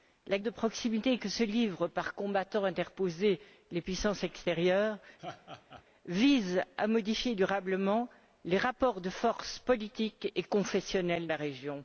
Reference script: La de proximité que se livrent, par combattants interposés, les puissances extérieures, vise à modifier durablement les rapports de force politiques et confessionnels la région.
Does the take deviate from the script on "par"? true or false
false